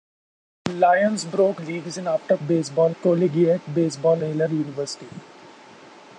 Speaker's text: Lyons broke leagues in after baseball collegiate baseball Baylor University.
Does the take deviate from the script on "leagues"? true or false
false